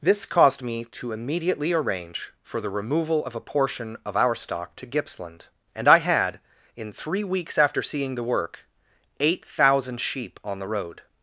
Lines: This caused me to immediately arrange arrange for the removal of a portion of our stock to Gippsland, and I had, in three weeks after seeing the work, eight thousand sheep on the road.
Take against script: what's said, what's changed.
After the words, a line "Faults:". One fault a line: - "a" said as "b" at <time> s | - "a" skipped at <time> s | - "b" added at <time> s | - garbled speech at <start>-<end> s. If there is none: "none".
This caused me to immediately arrange for the removal of a portion of our stock to Gippsland, and I had, in three weeks after seeing the work, eight thousand sheep on the road.
Faults:
- "arrange" skipped at 2.3 s